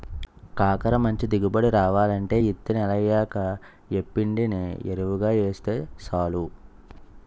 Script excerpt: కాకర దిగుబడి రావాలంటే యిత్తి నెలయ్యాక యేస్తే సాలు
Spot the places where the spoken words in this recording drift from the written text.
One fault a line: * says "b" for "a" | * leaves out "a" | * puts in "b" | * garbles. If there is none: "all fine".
* puts in "మంచి"
* puts in "యేప్పిండిని యెరువుగా"